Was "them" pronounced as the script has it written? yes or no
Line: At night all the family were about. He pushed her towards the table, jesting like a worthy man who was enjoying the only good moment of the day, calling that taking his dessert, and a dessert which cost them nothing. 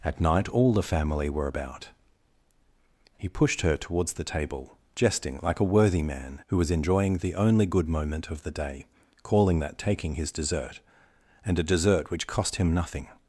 no